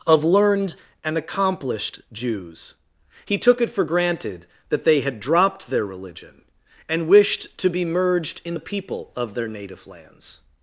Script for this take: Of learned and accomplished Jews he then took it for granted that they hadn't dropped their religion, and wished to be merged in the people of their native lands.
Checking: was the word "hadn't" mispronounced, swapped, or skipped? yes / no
yes